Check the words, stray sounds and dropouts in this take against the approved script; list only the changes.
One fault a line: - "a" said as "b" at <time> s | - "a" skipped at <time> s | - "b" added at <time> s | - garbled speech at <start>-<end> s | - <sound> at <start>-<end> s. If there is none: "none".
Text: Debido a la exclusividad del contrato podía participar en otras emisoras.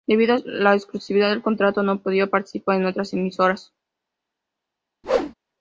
- "no" added at 1.8 s
- whoosh at 5.0-5.3 s